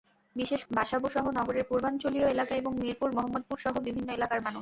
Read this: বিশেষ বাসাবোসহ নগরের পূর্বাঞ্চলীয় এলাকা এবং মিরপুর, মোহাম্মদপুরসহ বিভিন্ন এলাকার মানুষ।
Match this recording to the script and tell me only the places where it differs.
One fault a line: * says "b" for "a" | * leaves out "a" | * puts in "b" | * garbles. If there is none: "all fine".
all fine